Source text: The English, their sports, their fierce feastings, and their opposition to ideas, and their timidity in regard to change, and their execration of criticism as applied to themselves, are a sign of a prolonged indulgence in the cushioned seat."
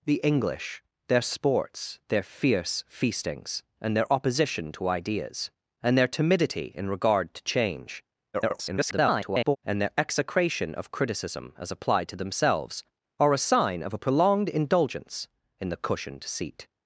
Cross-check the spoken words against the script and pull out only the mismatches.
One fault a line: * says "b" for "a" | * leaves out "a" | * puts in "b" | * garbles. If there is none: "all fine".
* garbles